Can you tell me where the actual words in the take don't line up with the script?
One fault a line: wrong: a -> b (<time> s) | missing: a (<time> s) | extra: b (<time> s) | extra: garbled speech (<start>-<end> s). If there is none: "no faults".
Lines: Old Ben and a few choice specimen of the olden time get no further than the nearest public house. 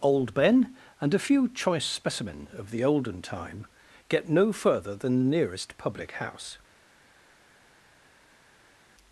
no faults